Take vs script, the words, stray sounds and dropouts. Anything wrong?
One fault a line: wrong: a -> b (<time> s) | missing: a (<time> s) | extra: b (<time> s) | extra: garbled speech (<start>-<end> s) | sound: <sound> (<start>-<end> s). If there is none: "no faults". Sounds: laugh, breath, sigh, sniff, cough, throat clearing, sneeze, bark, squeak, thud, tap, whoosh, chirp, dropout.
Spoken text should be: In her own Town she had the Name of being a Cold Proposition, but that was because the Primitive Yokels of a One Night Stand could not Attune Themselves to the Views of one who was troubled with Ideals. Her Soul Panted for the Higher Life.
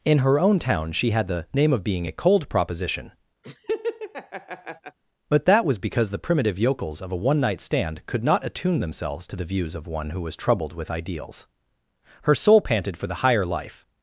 sound: laugh (3.4-5.0 s)